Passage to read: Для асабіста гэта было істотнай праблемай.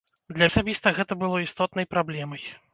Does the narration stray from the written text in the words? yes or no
no